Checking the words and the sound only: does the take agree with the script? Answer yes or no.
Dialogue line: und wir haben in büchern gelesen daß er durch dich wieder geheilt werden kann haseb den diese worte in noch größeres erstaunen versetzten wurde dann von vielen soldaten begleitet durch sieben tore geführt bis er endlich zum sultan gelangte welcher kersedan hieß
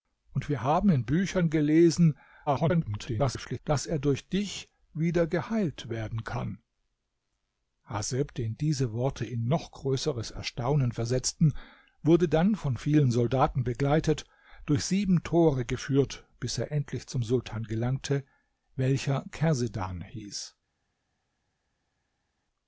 no